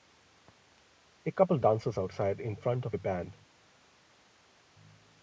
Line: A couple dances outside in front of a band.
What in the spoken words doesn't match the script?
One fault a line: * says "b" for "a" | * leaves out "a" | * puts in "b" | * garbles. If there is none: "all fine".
all fine